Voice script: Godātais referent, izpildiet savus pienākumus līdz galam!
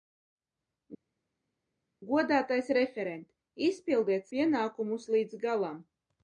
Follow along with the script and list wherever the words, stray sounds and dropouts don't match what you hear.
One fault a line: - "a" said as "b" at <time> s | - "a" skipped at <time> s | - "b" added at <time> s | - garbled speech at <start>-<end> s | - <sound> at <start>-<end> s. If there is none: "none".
- "savus" skipped at 4.3 s